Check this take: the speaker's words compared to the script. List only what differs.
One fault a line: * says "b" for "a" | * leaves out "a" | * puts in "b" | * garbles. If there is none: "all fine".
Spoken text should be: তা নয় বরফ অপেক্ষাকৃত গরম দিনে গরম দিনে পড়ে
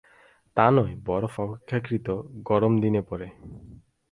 * leaves out "গরম দিনে"